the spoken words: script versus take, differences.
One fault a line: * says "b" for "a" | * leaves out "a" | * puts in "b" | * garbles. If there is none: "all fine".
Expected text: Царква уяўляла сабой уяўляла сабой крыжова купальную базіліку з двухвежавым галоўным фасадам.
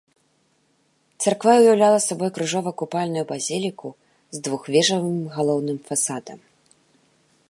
* leaves out "уяўляла сабой"